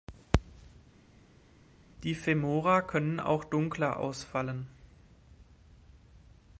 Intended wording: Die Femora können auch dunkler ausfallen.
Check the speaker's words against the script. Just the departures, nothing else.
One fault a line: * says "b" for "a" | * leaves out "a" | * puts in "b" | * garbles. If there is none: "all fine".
all fine